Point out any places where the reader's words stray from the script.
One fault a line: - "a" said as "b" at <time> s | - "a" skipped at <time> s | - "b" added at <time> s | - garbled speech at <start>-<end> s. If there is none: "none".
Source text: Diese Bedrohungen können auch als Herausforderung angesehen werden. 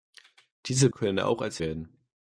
- "Bedrohungen" skipped at 0.9 s
- "Herausforderung angesehen" skipped at 1.6 s